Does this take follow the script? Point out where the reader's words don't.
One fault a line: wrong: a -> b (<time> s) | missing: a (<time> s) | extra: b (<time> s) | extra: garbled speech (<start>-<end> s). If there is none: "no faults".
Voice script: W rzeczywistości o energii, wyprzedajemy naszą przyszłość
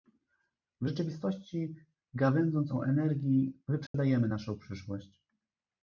extra: gawędząc (2.1 s)